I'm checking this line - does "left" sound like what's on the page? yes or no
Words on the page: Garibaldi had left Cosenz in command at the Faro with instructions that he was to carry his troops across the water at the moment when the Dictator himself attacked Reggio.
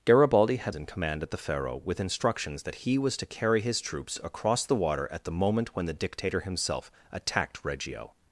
no